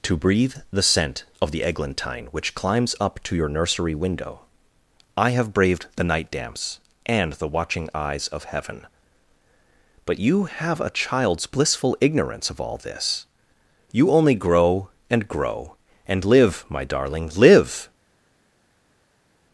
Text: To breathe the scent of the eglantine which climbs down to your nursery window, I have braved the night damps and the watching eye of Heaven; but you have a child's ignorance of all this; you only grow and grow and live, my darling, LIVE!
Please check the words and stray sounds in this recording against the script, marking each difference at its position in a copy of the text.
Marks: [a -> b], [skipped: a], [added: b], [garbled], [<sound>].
To breathe the scent of the eglantine which climbs [down -> up] to your nursery window, I have braved the night damps and the watching [eye -> eyes] of Heaven; but you have a child's [added: blissful] ignorance of all this; you only grow and grow and live, my darling, LIVE!